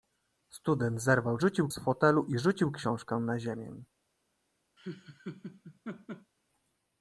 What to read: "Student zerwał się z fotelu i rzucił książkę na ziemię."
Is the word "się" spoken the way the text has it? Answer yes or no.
no